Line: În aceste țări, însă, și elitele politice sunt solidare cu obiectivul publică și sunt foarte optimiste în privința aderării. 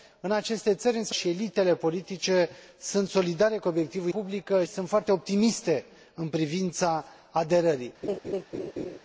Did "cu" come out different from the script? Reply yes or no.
no